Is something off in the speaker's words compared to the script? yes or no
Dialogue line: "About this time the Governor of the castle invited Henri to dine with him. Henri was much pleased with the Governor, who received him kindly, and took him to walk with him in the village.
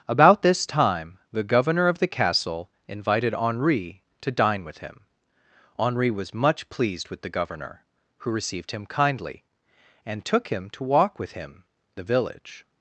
yes